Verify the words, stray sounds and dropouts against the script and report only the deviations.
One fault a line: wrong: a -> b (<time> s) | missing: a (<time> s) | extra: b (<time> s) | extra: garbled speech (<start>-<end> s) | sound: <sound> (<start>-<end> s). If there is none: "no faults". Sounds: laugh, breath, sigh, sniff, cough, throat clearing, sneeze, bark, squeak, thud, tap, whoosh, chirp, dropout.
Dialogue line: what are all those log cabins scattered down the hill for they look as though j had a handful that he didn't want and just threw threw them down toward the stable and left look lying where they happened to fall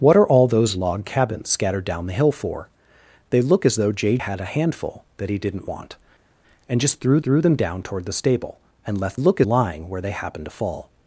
no faults